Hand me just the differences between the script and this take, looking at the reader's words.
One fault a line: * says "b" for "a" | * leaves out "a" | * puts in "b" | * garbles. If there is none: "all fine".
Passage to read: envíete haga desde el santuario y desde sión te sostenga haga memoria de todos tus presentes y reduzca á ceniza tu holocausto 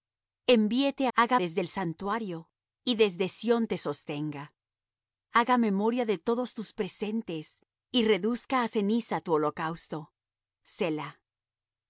all fine